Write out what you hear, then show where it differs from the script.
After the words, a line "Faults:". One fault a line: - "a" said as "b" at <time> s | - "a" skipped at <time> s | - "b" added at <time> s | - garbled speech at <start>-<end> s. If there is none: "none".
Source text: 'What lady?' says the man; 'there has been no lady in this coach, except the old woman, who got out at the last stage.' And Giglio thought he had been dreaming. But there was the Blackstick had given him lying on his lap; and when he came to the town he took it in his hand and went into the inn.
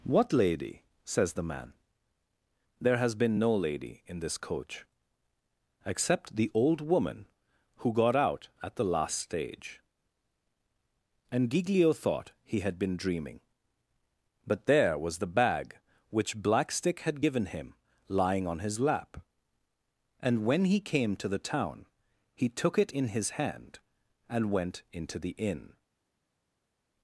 'What lady?' says the man; 'there has been no lady in this coach, except the old woman, who got out at the last stage.' And Giglio thought he had been dreaming. But there was the bag which Blackstick had given him lying on his lap; and when he came to the town he took it in his hand and went into the inn.
Faults:
- "bag which" added at 15.3 s